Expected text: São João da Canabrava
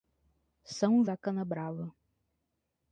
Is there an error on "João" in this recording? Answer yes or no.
yes